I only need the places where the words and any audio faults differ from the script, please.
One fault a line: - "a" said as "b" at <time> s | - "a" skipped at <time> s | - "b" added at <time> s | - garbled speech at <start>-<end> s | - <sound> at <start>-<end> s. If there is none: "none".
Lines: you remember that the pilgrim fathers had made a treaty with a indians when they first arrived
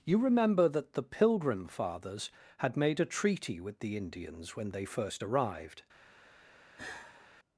- "a" said as "the" at 3.8 s
- sigh at 6.8-7.3 s